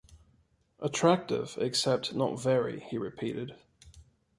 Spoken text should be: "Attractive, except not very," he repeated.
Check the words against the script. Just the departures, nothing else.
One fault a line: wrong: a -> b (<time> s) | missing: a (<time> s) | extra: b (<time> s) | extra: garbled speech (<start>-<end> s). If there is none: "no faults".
no faults